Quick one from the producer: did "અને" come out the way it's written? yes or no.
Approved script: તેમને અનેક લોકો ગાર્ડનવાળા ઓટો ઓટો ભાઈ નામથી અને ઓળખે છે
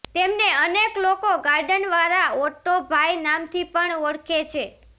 no